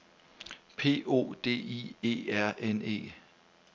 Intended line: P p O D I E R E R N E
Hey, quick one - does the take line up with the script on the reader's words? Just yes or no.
no